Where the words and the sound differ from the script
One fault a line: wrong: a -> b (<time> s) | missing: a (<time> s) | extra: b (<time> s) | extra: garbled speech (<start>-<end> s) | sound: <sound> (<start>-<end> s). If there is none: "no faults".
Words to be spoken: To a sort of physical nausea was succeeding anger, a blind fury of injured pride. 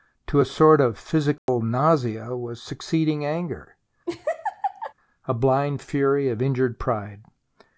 sound: dropout (1.4-1.5 s)
sound: laugh (4.1-4.9 s)